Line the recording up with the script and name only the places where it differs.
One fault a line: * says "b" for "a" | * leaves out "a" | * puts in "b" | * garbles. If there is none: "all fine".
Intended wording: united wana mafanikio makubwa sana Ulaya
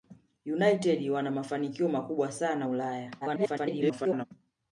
* garbles